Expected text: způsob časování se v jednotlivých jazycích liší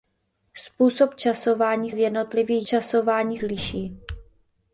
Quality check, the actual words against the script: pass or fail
fail